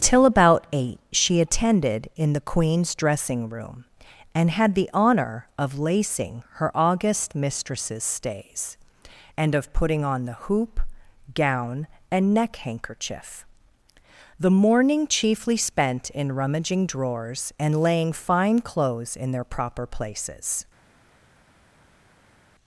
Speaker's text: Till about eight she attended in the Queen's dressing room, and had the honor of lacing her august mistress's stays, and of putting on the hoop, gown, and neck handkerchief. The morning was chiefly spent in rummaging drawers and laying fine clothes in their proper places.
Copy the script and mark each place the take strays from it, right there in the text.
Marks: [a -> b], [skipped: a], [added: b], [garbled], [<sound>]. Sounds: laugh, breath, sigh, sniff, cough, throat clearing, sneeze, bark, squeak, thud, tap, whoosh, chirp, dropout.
Till about eight she attended in the Queen's dressing room, and had the honor of lacing her august mistress's stays, and of putting on the hoop, gown, and neck handkerchief. The morning [skipped: was] chiefly spent in rummaging drawers and laying fine clothes in their proper places.